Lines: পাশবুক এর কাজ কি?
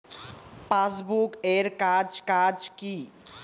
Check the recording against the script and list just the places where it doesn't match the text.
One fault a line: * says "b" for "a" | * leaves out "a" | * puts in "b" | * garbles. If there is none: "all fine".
* puts in "কাজ"